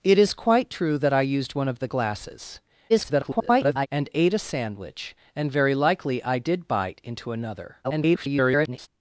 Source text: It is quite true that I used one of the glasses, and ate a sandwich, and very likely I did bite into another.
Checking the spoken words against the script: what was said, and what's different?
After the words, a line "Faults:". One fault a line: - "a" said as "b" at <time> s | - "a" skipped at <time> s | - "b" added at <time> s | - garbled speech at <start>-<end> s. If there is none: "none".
It is quite true that I used one of the glasses, [garbled] and ate a sandwich, and very likely I did bite into another. [garbled]
Faults:
- garbled speech at 2.9-3.9 s
- garbled speech at 7.8-8.9 s